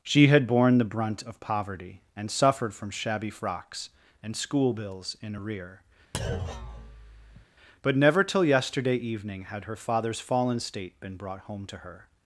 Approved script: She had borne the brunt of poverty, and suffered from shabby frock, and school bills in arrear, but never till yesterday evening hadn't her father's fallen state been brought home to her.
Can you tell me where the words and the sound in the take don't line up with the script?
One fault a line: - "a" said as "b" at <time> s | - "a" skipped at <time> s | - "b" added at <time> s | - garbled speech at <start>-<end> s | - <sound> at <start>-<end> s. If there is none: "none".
- "frock" said as "frocks" at 3.3 s
- thud at 6.1-7.5 s
- "hadn't" said as "had" at 9.4 s